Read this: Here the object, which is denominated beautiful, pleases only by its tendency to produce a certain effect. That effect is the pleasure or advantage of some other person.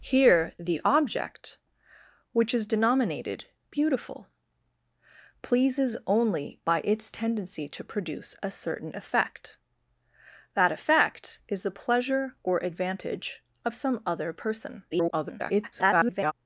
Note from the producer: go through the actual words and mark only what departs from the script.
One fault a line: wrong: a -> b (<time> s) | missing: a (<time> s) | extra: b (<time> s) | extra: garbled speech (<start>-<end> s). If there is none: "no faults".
extra: garbled speech (14.9-16.3 s)